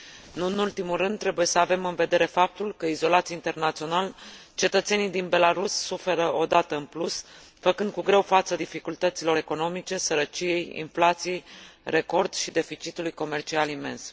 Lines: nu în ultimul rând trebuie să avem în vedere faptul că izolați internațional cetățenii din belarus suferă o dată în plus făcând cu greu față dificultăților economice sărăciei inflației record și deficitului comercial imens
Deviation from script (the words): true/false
false